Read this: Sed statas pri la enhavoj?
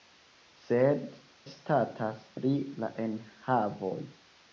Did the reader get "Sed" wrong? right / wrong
right